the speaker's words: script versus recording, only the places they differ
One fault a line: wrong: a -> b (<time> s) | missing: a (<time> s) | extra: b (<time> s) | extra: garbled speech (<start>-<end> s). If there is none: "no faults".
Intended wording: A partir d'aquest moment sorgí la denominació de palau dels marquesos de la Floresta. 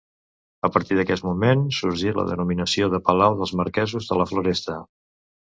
no faults